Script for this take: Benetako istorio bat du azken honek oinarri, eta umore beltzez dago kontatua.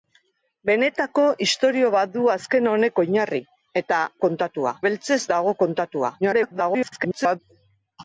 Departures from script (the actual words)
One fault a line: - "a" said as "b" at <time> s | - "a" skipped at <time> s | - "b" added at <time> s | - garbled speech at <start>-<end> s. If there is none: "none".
- "umore" said as "kontatua" at 4.3 s
- garbled speech at 6.2-7.4 s